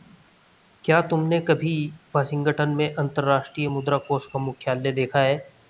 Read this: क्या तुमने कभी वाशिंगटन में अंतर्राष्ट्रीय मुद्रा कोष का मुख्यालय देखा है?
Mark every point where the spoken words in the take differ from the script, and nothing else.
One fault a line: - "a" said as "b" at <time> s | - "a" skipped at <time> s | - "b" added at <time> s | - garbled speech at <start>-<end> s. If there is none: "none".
none